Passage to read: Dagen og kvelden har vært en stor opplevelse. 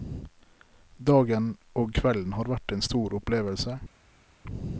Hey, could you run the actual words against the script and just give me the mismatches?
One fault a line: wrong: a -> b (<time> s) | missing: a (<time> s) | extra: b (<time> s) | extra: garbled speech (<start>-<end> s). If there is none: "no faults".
no faults